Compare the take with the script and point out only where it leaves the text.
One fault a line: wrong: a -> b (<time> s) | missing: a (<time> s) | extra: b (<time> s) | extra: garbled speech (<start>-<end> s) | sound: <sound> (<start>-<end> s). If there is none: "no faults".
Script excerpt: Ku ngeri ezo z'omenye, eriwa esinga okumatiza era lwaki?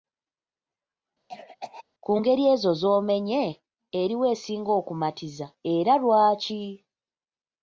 sound: cough (1.3-1.8 s)